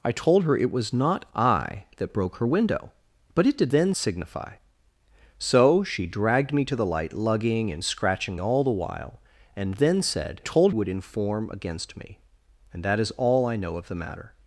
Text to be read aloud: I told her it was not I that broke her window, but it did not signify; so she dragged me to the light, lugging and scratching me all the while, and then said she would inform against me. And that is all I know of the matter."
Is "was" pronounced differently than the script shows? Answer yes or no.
no